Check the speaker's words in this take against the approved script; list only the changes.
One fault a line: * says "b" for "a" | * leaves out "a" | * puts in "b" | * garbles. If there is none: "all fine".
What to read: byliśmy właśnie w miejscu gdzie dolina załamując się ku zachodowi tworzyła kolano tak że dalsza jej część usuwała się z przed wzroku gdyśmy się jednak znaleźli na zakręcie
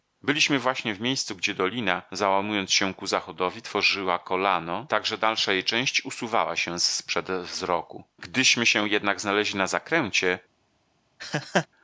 all fine